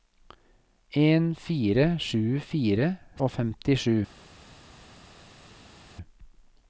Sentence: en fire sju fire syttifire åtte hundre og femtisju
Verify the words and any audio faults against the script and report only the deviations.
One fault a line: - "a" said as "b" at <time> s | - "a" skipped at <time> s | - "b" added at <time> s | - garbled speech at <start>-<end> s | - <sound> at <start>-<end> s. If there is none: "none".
- "syttifire åtte hundre" skipped at 2.9 s